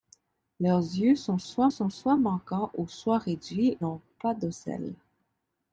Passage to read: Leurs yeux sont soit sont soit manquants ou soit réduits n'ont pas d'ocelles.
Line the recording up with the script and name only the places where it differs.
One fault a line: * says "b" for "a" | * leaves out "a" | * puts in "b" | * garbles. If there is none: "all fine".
all fine